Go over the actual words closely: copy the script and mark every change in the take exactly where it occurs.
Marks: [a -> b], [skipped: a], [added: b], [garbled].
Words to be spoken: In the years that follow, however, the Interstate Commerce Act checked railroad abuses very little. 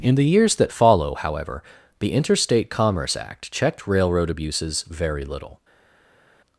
In the years that follow, however, the Interstate Commerce Act checked railroad abuses very little.